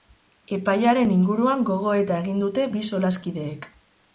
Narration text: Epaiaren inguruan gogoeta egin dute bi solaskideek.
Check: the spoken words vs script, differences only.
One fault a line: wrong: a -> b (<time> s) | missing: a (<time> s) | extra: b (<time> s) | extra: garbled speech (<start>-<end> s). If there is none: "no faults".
no faults